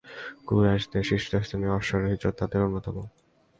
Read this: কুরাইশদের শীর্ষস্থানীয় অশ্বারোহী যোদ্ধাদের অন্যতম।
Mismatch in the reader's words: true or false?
false